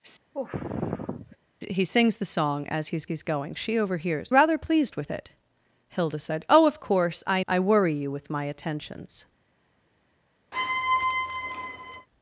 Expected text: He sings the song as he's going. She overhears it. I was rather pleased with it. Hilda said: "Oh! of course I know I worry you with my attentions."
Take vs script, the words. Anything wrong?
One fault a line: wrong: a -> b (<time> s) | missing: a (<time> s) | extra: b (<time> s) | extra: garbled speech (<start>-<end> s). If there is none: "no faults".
extra: he's (3.0 s)
missing: it I was (4.3 s)
missing: know (7.4 s)